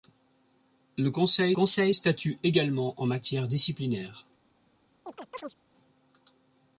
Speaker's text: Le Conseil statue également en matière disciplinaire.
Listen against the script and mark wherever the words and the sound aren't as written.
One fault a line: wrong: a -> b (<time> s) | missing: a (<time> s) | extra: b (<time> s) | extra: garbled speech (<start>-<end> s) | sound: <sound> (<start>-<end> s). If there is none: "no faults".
extra: Conseil (1.5 s)
sound: chirp (5.1-5.5 s)